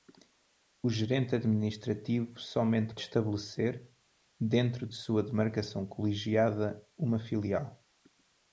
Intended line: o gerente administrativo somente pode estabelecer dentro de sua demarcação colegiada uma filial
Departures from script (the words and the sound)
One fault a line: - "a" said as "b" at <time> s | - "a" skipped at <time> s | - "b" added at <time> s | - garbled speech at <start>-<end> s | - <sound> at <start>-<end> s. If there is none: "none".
- "pode" skipped at 3.0 s